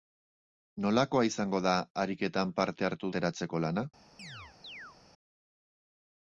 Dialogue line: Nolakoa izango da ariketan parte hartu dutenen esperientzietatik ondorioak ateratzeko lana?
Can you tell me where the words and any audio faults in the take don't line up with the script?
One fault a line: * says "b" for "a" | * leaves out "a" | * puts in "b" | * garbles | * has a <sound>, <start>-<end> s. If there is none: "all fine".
* leaves out "dutenen esperientzietatik ondorioak"
* has a chirp, 4.2-5.0 s